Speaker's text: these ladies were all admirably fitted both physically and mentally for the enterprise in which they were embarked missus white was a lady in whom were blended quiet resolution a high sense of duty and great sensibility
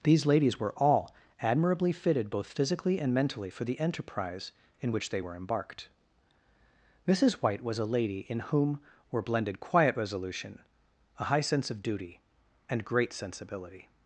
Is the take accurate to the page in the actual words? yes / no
yes